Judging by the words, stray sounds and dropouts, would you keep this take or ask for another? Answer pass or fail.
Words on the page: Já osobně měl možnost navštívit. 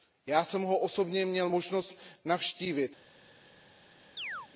fail